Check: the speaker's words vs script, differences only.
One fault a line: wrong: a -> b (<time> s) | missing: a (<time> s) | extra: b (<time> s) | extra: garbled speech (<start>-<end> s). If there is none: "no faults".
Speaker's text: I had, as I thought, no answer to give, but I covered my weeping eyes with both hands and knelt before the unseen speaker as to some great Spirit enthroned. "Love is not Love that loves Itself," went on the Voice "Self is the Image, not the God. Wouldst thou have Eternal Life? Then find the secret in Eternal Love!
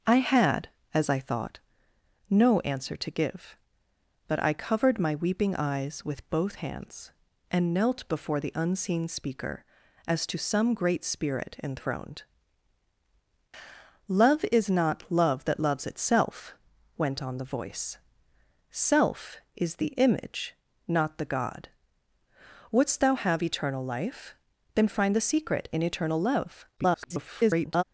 extra: garbled speech (26.8-27.8 s)